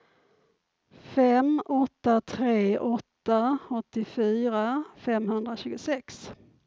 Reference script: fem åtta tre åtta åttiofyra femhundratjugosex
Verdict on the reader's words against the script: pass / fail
pass